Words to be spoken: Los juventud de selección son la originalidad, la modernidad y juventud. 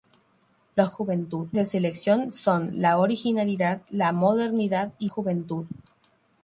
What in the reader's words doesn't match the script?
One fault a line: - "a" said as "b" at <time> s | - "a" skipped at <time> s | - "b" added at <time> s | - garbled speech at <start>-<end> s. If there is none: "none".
none